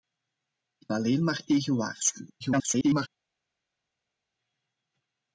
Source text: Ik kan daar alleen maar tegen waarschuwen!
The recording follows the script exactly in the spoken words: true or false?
false